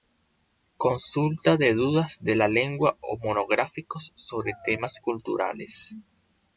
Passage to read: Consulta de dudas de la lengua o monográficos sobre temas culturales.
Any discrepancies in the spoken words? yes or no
no